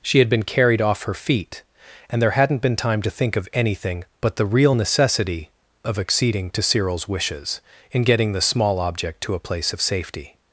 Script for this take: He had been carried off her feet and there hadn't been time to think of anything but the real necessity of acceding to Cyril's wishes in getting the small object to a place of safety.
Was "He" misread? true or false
true